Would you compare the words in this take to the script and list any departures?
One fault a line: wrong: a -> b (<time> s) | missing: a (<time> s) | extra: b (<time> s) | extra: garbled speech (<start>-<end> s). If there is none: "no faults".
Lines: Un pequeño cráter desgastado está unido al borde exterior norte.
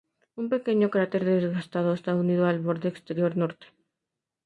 no faults